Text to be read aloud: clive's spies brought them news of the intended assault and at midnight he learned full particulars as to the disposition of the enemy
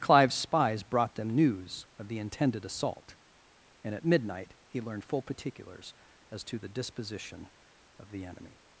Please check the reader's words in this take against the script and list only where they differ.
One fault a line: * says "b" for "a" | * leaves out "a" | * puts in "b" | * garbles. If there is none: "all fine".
all fine